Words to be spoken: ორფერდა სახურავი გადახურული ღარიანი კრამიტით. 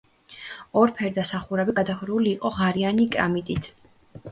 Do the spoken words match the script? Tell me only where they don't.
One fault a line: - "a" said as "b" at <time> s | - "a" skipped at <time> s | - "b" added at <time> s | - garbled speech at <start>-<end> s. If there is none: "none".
- "იყო" added at 2.4 s